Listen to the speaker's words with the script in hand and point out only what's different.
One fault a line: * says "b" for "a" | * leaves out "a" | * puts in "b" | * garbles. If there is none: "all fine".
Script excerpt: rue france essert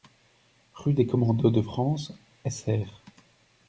* puts in "des commandos de"